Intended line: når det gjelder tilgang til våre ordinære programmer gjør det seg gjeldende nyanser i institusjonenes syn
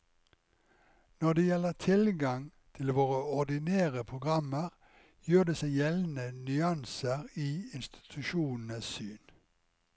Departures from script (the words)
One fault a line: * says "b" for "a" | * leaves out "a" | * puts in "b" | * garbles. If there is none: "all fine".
all fine